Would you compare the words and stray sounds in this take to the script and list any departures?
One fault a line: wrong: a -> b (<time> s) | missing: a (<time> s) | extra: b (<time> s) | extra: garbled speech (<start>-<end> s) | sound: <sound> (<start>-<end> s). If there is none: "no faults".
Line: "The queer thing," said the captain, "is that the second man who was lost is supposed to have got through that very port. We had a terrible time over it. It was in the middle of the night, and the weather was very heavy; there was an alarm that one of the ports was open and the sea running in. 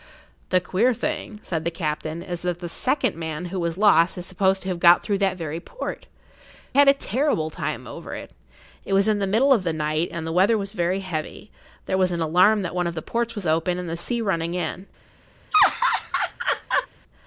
missing: We (6.1 s)
sound: laugh (15.5-16.9 s)